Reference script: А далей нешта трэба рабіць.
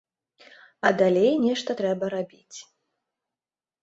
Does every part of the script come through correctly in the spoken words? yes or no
yes